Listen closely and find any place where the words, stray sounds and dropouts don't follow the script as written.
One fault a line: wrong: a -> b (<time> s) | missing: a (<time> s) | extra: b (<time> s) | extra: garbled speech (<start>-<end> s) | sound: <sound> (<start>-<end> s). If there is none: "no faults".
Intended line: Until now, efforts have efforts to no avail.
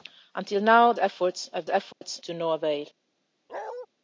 sound: dropout (1.9-2.0 s)
sound: bark (3.5-3.9 s)